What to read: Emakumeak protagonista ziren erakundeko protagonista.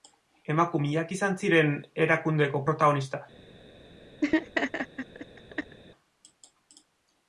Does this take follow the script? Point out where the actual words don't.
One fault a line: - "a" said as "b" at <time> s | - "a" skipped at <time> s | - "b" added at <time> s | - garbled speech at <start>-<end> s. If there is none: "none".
- "protagonista" said as "izan" at 1.2 s